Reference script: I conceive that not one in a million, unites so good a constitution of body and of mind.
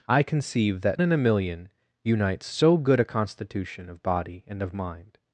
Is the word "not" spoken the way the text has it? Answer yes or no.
no